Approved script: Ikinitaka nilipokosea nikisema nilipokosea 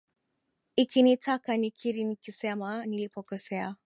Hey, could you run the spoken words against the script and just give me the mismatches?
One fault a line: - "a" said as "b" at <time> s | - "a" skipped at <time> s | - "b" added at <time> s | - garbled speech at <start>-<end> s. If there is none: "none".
- "nilipokosea" said as "nikiri" at 1.6 s